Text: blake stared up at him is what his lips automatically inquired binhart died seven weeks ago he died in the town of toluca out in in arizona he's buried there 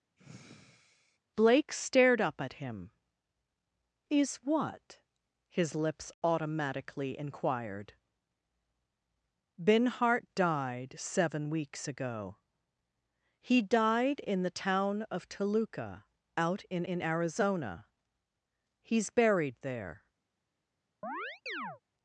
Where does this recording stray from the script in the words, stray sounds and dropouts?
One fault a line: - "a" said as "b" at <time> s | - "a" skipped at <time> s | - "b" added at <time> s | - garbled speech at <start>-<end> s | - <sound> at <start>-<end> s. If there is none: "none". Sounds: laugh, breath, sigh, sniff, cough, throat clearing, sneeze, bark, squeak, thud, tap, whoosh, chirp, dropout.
- sigh at 0.2-1.2 s
- chirp at 21.0-21.8 s